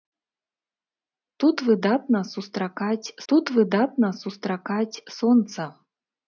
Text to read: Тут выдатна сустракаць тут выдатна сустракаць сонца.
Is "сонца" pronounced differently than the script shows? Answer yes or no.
no